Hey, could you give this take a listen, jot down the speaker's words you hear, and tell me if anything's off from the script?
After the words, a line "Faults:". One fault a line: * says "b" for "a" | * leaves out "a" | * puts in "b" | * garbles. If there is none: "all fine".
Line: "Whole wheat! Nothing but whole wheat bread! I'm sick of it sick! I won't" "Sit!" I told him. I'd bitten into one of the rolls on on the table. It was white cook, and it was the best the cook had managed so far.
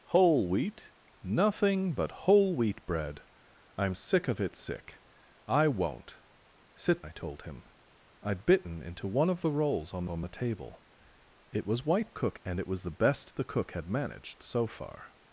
"Whole wheat! Nothing but whole wheat bread! I'm sick of it sick! I won't" "Sit!" I told him. I'd bitten into one of the rolls on on the table. It was white cook, and it was the best the cook had managed so far.
Faults:
all fine